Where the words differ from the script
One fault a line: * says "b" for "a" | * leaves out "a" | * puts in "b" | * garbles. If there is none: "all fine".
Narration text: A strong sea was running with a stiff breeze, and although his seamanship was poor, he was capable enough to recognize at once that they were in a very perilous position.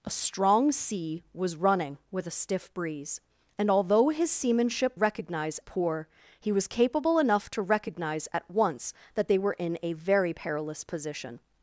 * says "recognize" for "was"